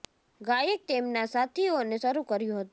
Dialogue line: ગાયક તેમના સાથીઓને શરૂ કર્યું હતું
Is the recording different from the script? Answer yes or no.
no